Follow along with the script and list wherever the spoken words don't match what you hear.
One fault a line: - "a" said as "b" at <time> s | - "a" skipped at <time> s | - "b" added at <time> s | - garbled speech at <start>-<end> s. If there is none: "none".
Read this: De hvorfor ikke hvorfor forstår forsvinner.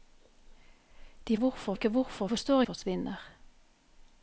none